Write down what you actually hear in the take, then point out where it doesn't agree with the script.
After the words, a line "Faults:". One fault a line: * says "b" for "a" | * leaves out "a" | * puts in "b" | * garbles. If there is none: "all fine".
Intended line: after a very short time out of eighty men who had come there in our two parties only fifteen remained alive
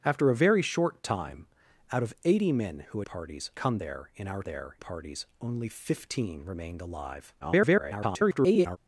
after a very short time out of eighty men who parties come there in our there parties only fifteen remained alive [garbled]
Faults:
* says "parties" for "had"
* says "there" for "two"
* garbles